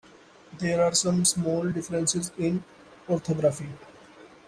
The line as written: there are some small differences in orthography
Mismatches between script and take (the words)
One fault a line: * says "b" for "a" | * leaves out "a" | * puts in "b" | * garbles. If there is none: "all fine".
all fine